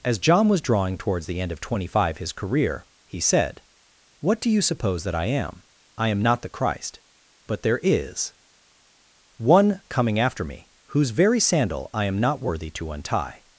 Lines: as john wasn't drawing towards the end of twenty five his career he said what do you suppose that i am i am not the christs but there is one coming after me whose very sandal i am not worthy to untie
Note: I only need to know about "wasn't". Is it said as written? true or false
false